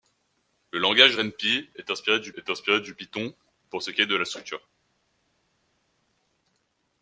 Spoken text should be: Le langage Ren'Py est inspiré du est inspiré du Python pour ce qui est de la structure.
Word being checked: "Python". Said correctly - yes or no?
yes